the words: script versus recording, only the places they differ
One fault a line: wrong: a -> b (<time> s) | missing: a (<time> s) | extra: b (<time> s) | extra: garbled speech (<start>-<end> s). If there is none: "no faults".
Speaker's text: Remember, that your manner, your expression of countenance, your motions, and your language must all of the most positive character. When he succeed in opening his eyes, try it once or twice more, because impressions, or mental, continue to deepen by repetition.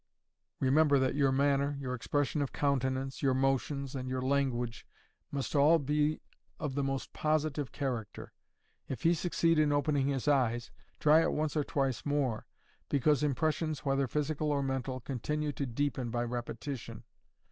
extra: be (5.8 s)
wrong: When -> If (8.9 s)
extra: whether physical (13.8 s)